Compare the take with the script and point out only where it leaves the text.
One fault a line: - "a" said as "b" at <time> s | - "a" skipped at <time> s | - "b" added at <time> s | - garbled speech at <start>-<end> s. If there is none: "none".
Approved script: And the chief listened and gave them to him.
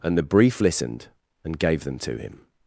- "chief" said as "brief" at 0.2 s